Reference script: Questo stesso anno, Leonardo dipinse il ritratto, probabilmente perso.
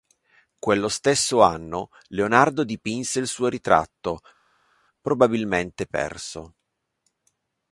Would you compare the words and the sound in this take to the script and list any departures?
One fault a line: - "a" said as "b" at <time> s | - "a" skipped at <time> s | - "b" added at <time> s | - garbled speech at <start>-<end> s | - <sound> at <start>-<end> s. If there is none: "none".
- "Questo" said as "Quello" at 0.6 s
- "suo" added at 3.3 s